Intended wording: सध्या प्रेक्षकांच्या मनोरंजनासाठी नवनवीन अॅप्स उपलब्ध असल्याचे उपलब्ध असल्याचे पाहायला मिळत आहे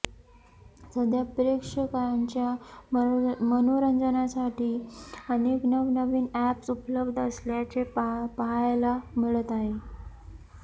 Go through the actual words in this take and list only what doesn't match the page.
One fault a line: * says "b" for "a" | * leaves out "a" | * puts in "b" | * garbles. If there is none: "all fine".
* puts in "अनेक"
* leaves out "उपलब्ध असल्याचे"